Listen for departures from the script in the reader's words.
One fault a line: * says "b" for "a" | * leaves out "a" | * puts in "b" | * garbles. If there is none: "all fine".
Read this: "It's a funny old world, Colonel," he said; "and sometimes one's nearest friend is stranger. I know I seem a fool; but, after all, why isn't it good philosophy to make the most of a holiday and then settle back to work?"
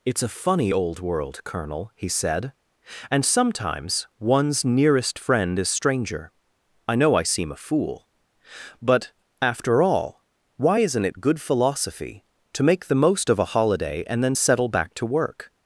all fine